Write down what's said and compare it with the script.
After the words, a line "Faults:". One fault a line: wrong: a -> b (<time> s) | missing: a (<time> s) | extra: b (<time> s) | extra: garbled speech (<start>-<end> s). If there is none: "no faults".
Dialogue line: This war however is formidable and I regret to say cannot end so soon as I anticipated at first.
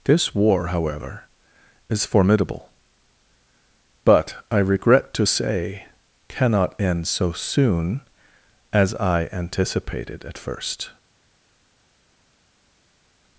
This war however is formidable but I regret to say cannot end so soon as I anticipated at first.
Faults:
wrong: and -> but (4.0 s)